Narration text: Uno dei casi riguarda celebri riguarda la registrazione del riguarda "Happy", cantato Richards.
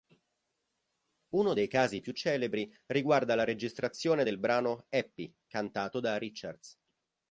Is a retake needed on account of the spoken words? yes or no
yes